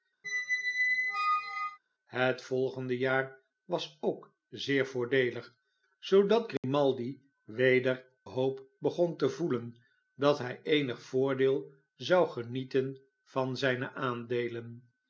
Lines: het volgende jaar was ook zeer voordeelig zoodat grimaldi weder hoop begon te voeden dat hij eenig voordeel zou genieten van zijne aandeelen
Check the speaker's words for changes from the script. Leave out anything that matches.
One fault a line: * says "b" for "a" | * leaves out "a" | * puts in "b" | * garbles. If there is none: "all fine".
all fine